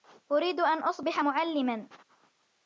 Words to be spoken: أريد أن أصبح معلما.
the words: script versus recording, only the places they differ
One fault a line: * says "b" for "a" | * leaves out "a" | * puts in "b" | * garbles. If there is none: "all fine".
all fine